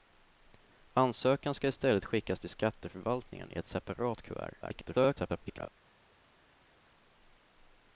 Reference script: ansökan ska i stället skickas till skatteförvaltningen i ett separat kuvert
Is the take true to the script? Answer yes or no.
no